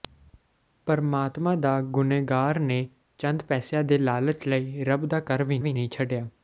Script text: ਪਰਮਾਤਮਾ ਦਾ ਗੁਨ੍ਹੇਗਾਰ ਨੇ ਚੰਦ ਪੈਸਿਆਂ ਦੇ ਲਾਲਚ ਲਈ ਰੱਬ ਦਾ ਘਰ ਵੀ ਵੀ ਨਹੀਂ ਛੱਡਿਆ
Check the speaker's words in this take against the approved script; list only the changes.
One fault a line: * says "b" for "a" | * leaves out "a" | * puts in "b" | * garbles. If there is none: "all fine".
all fine